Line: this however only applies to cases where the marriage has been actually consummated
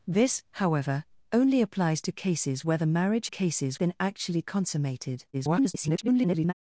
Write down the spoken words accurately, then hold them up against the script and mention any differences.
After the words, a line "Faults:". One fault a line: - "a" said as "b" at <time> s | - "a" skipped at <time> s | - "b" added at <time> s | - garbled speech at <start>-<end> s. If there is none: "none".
this however only applies to cases where the marriage cases been actually consummated [garbled]
Faults:
- "has" said as "cases" at 3.3 s
- garbled speech at 5.3-6.5 s